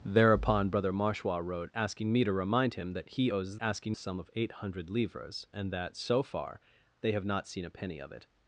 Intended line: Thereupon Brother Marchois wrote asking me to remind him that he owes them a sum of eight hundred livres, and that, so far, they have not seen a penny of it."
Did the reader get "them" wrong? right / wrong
wrong